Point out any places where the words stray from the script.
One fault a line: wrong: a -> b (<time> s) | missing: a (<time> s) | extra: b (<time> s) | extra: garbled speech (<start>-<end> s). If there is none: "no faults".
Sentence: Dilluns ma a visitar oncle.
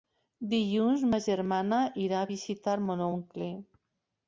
extra: germana irà (1.3 s)
extra: mon (2.9 s)